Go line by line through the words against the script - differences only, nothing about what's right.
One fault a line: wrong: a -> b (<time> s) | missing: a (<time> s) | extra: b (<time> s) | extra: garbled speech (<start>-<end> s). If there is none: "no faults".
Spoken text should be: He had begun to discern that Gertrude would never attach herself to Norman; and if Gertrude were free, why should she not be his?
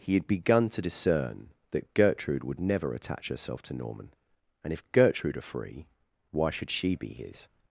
wrong: were -> are (5.4 s)
missing: not (7.0 s)